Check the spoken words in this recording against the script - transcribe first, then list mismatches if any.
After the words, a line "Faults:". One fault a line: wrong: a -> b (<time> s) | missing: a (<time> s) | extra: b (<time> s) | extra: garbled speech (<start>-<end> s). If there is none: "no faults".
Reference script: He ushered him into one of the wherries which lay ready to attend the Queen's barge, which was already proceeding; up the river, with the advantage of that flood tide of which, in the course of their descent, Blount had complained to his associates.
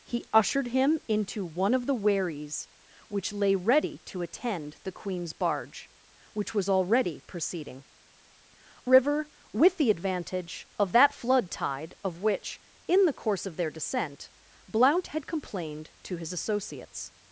He ushered him into one of the wherries which lay ready to attend the Queen's barge, which was already proceeding; river, with the advantage of that flood tide of which, in the course of their descent, Blount had complained to his associates.
Faults:
missing: up the (7.8 s)